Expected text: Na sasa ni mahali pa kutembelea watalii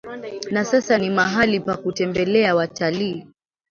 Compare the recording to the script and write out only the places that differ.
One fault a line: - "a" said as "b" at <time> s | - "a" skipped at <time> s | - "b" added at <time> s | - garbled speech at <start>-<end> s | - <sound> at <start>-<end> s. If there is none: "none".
none